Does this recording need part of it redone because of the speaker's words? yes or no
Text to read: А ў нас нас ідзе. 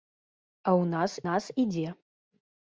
no